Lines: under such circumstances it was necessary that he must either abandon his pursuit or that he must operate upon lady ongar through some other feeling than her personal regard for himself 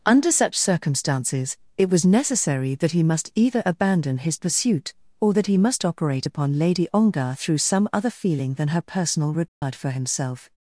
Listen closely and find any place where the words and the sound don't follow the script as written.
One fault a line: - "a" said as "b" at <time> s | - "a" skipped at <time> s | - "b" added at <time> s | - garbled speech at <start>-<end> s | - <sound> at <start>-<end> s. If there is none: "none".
- dropout at 9.5-9.6 s